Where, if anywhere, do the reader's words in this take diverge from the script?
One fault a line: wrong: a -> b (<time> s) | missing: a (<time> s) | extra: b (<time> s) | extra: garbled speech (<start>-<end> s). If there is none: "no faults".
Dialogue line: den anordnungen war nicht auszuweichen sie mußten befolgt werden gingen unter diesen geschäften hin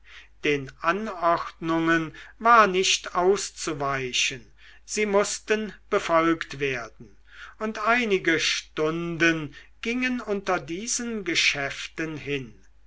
extra: und einige stunden (7.6 s)